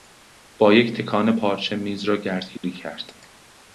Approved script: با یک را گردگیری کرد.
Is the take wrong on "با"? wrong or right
right